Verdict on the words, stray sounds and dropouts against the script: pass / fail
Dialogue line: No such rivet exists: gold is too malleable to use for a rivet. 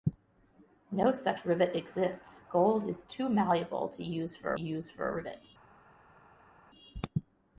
fail